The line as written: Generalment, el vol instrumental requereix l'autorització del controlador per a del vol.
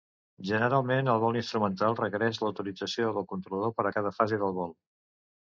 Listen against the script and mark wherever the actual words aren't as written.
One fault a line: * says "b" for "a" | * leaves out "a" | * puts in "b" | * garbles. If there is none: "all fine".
* puts in "cada fase"